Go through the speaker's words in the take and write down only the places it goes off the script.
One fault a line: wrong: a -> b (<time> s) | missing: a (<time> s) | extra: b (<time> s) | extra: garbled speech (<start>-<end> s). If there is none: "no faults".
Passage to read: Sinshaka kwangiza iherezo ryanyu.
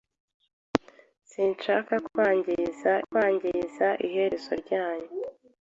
extra: kwangiza (3.0 s)